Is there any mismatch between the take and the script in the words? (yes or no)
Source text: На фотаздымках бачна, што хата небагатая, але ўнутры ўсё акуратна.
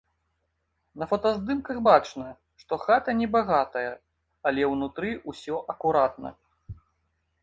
no